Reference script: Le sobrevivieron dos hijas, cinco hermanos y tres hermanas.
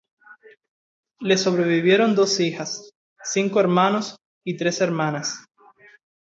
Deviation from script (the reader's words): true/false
false